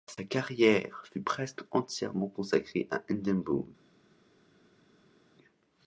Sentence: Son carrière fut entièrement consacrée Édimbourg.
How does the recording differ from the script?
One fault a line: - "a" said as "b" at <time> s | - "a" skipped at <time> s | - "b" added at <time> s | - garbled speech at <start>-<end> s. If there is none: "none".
- "Son" said as "Sa" at 0.1 s
- "presque" added at 1.2 s
- "à" added at 2.9 s